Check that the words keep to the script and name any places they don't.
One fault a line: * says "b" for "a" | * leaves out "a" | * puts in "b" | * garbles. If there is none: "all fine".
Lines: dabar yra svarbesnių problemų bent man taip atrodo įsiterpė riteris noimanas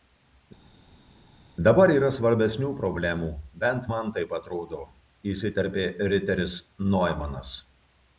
all fine